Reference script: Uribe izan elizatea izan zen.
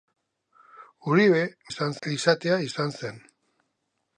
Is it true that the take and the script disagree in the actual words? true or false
false